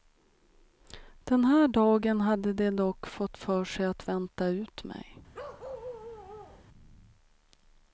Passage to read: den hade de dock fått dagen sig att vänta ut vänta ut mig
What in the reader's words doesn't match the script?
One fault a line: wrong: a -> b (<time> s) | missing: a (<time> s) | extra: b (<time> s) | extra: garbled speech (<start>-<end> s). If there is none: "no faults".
extra: här dagen (1.4 s)
wrong: dagen -> för (3.4 s)
missing: vänta ut (4.8 s)